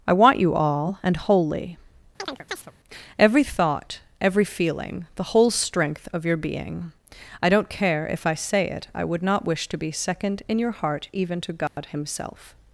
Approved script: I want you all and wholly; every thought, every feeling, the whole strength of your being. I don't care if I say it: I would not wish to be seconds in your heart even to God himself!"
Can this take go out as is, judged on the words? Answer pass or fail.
fail